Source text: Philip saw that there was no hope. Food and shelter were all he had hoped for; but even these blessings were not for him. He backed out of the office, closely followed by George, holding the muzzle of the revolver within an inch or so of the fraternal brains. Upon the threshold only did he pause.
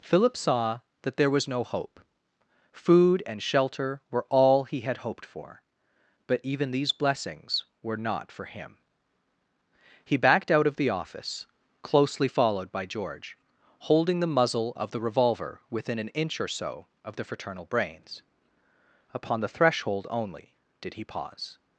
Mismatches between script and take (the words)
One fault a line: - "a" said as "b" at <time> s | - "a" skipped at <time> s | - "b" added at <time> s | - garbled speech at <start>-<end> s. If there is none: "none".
none